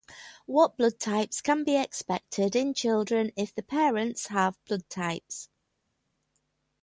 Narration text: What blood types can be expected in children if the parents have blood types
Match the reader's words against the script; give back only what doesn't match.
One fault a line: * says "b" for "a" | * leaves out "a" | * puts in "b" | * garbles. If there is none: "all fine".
all fine